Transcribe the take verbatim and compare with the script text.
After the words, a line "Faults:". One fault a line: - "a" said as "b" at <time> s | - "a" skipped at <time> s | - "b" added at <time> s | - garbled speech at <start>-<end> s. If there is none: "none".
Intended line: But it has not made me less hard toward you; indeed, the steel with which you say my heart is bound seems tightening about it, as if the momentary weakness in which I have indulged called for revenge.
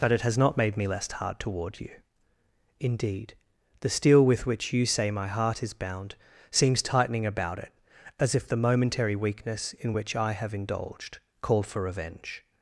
But it has not made me less hard toward you; indeed, the steel with which you say my heart is bound seems tightening about it, as if the momentary weakness in which I have indulged called for revenge.
Faults:
none